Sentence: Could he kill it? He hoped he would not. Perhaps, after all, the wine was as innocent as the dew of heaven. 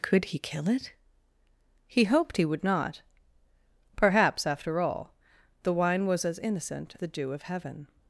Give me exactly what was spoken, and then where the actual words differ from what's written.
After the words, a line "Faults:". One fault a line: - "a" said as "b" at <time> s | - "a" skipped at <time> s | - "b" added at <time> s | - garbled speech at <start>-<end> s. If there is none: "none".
Could he kill it? He hoped he would not. Perhaps, after all, the wine was as innocent the dew of heaven.
Faults:
- "as" skipped at 7.0 s